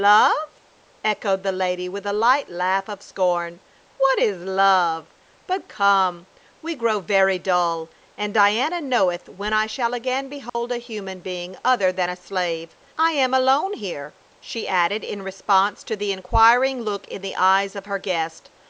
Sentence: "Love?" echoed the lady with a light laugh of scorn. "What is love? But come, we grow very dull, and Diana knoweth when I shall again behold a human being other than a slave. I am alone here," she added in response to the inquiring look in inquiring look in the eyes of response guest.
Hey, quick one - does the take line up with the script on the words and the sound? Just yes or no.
no